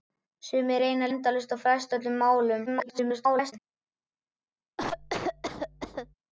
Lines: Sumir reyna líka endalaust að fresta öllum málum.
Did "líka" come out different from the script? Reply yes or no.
yes